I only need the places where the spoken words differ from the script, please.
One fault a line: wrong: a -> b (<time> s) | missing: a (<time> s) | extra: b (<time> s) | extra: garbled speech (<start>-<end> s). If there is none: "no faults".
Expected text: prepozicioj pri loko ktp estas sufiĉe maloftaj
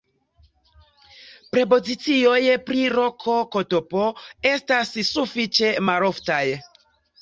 no faults